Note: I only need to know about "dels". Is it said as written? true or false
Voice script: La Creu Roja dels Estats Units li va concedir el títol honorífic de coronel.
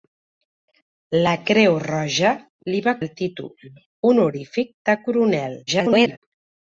false